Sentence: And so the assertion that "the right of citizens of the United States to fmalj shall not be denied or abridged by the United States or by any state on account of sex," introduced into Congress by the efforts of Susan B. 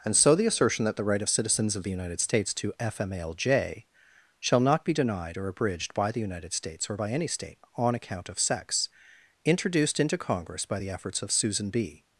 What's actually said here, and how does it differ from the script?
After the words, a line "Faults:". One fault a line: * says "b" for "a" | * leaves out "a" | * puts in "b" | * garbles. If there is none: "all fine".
And so the assertion that "the right of citizens of the United States to fmalj shall not be denied or abridged by the United States or by any state on account of sex," introduced into Congress by the efforts of Susan B.
Faults:
all fine